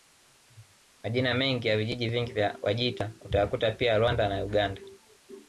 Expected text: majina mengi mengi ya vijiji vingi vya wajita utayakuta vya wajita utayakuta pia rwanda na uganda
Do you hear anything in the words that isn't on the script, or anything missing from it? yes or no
yes